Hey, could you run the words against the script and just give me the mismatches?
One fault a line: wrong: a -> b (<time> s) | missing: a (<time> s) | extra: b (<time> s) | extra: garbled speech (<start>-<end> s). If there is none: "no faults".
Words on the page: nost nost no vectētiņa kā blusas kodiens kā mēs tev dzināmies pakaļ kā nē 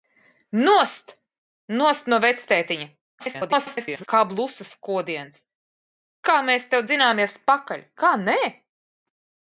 extra: garbled speech (3.2-4.1 s)